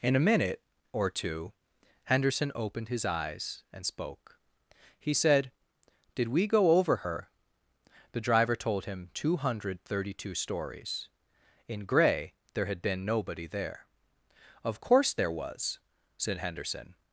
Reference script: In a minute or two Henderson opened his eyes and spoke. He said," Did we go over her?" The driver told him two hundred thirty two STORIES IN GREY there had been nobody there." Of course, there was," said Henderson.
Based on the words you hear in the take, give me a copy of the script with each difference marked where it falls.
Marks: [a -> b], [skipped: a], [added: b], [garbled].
In a minute or two Henderson opened his eyes and spoke. He said," Did we go over her?" The driver told him two hundred thirty two STORIES IN GREY there had been nobody there." Of course, there was," said Henderson.